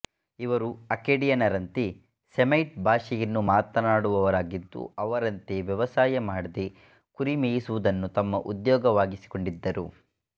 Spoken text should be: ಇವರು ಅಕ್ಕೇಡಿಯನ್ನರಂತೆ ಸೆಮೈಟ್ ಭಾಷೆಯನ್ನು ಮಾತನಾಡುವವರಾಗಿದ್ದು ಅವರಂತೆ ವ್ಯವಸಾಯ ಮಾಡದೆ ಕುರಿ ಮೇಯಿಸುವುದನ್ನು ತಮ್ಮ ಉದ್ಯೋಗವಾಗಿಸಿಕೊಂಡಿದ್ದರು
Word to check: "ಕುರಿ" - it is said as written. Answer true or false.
true